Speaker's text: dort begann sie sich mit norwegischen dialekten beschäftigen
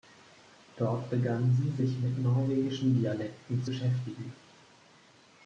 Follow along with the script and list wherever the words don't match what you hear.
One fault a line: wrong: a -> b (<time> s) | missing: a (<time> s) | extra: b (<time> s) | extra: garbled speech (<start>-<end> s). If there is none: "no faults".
no faults